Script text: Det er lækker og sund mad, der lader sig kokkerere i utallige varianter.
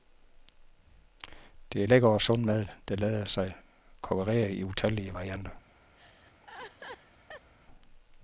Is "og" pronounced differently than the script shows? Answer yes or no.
no